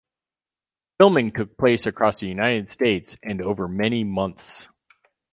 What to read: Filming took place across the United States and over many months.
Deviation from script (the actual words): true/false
false